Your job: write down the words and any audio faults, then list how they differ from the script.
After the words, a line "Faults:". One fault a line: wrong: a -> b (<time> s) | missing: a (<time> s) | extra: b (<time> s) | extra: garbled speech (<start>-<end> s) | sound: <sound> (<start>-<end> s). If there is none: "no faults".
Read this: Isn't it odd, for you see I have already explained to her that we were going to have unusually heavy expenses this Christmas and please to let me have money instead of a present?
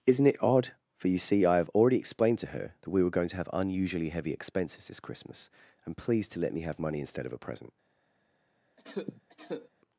Isn't it odd, for you see I have already explained to her that we were going to have unusually heavy expenses this Christmas and please to let me have money instead of a present?
Faults:
sound: cough (8.8-9.7 s)